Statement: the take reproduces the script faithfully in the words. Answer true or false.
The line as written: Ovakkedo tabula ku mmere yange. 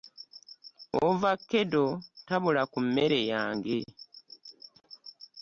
true